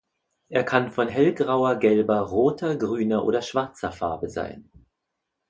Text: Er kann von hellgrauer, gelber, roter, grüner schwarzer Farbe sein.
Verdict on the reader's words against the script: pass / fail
fail